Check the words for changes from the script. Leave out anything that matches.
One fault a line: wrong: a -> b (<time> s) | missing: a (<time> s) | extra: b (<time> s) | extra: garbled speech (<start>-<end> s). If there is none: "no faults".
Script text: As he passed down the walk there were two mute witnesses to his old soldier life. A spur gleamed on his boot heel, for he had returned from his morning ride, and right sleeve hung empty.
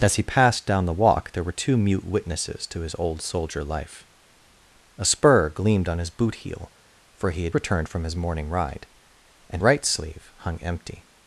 no faults